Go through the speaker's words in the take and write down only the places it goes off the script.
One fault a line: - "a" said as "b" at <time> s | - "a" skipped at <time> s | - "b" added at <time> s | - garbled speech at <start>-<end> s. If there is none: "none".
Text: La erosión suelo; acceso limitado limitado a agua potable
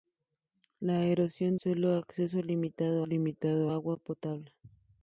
none